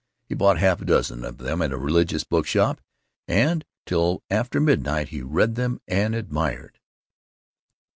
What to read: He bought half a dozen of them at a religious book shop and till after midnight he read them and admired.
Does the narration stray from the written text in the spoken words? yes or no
no